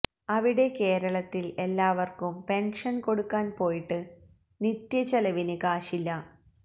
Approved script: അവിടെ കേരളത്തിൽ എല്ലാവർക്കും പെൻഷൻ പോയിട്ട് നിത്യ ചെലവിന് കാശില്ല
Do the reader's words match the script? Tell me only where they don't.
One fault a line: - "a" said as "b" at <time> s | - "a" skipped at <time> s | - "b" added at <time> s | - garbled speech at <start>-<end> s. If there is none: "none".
- "കൊടുക്കാൻ" added at 3.0 s